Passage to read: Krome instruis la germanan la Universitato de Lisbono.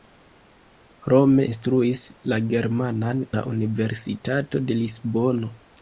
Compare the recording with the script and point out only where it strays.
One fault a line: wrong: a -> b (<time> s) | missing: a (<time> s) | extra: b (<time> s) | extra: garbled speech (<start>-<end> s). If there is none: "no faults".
no faults